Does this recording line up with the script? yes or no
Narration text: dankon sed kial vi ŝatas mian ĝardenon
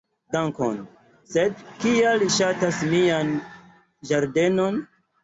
no